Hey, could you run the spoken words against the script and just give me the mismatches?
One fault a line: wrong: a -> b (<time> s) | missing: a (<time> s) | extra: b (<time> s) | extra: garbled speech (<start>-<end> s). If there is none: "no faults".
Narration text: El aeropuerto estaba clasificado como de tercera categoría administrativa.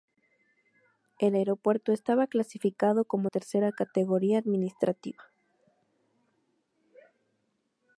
missing: de (3.3 s)